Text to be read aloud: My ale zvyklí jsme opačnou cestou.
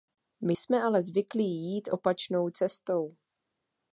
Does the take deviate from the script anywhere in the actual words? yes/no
yes